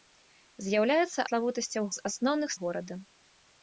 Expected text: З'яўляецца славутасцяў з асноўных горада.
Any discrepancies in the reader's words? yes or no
no